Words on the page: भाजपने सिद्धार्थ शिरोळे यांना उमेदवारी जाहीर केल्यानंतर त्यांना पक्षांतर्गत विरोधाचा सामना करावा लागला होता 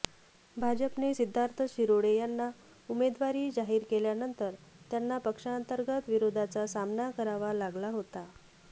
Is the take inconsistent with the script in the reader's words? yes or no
no